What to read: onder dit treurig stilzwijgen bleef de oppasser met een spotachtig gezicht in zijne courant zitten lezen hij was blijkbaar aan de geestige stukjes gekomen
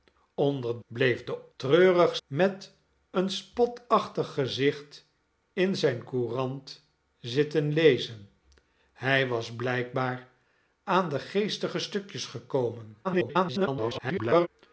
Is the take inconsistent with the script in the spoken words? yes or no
yes